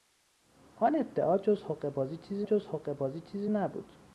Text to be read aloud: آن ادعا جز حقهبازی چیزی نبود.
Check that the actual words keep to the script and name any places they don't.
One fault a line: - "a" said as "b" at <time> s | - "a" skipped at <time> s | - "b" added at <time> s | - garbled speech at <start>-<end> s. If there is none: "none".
- "جز حقهبازی چیزی" added at 2.4 s